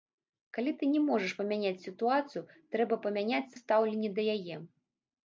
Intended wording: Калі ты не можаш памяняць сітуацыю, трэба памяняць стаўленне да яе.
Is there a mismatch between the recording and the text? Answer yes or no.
no